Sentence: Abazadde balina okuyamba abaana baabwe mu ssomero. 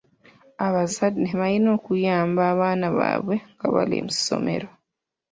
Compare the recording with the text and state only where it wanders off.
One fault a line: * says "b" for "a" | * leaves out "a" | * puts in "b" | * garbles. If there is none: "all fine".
* puts in "nga bali"